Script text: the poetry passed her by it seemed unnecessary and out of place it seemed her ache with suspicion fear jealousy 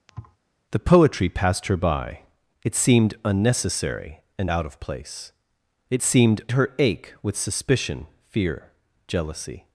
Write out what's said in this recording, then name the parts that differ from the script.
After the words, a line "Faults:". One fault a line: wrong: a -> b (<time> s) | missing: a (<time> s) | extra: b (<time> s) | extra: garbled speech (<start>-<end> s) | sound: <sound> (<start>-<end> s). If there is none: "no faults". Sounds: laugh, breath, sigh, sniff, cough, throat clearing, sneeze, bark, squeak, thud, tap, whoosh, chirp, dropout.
the poetry passed her by it seemed unnecessary and out of place it seemed her ache with suspicion fear jealousy
Faults:
sound: thud (0.1-0.4 s)